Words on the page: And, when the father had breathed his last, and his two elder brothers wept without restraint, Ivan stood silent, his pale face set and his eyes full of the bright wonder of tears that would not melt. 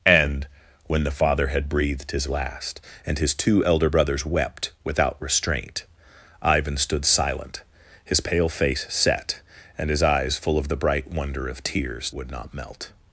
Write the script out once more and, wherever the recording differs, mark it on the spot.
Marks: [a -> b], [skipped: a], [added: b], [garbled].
And, when the father had breathed his last, and his two elder brothers wept without restraint, Ivan stood silent, his pale face set and his eyes full of the bright wonder of tears [skipped: that] would not melt.